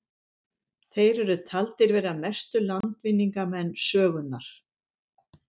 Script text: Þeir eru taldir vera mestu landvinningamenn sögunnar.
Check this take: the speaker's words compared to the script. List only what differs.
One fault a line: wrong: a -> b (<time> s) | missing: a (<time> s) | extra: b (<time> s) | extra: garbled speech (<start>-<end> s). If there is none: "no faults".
no faults